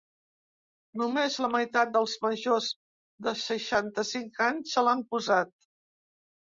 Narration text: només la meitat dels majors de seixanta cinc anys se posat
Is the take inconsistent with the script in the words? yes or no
yes